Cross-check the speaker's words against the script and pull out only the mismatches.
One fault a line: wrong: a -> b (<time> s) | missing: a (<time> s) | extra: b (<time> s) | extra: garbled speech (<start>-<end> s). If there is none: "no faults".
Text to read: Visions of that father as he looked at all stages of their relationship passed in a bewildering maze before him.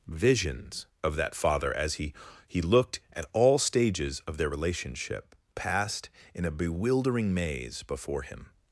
extra: he (2.5 s)